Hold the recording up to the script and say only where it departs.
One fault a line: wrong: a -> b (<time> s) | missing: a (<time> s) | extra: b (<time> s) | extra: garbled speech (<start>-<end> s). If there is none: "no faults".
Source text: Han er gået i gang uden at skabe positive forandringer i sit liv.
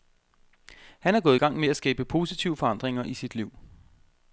wrong: uden -> med (1.6 s)